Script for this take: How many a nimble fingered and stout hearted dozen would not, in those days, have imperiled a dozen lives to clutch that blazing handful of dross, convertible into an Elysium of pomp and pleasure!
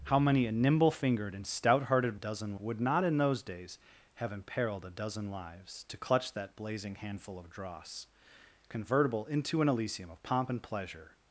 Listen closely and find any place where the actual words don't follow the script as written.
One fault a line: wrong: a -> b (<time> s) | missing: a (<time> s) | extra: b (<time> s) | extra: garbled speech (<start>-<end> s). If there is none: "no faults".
no faults